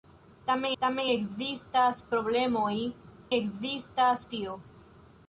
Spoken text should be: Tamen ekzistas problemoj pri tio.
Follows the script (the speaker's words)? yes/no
no